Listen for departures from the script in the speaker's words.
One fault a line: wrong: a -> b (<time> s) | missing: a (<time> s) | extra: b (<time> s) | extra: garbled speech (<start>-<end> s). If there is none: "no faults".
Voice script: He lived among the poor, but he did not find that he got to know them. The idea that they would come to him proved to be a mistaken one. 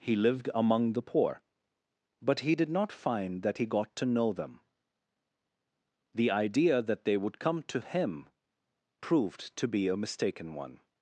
no faults